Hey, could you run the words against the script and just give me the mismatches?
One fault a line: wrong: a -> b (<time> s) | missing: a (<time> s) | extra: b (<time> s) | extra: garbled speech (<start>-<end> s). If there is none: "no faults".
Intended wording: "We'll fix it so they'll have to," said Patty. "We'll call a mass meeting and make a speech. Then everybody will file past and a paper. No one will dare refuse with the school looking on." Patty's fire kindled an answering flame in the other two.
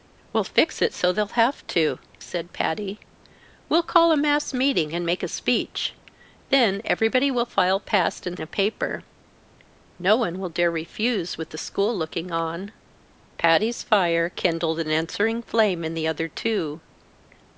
no faults